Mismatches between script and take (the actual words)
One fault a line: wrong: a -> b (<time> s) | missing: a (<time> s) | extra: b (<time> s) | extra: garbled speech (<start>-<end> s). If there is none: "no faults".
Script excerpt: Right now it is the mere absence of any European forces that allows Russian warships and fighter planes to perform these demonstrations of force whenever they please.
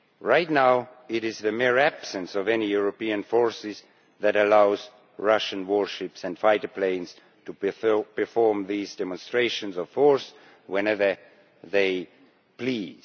no faults